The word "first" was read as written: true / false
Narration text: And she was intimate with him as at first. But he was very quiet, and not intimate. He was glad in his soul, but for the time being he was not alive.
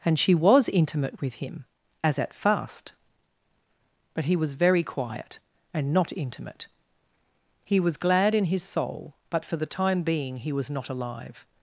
false